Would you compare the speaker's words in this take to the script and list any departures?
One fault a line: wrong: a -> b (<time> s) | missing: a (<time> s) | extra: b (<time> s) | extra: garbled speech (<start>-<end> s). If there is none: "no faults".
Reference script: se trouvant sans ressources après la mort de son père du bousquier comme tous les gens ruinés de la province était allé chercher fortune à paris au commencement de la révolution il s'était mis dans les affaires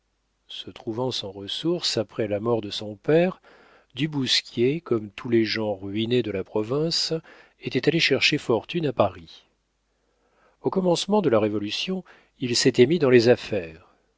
no faults